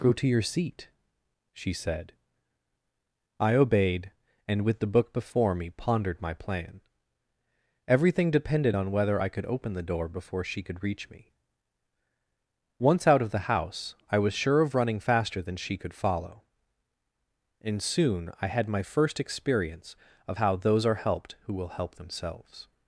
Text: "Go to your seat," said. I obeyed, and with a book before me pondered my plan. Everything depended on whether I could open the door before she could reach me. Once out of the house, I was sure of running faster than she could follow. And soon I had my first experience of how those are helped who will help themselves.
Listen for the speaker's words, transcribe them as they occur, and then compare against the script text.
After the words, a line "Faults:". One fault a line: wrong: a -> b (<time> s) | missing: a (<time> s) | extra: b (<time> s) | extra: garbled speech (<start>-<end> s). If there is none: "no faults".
"Go to your seat," she said. I obeyed, and with the book before me pondered my plan. Everything depended on whether I could open the door before she could reach me. Once out of the house, I was sure of running faster than she could follow. And soon I had my first experience of how those are helped who will help themselves.
Faults:
extra: she (1.5 s)
wrong: a -> the (4.8 s)